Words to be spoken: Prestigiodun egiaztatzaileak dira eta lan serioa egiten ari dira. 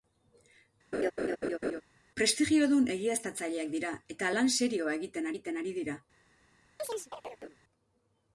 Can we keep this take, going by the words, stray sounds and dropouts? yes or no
no